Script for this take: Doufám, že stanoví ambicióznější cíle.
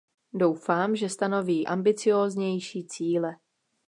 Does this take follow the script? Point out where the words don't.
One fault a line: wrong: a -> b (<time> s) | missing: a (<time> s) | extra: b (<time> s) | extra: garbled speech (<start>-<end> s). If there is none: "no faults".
no faults